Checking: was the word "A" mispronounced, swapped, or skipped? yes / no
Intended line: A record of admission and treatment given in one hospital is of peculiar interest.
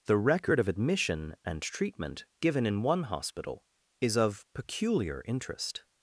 yes